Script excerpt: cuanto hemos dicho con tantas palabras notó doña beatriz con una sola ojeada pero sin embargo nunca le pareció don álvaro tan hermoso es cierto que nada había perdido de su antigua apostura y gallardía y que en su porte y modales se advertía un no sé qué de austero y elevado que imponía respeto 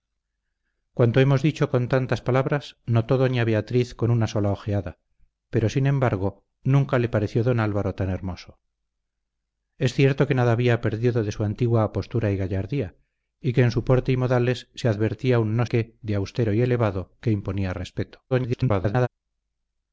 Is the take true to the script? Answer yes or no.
no